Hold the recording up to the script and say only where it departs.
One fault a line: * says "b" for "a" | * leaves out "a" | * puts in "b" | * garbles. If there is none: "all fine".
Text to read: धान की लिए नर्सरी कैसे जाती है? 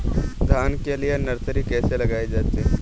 * says "के" for "की"
* puts in "लगाई"